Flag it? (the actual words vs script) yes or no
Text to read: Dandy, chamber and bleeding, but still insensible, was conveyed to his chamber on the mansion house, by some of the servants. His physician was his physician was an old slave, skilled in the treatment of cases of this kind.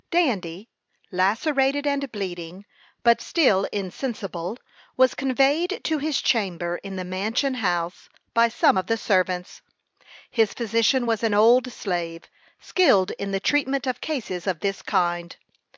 yes